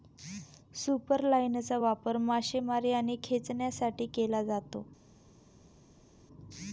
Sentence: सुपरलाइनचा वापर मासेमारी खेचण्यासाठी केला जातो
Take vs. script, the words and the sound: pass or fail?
fail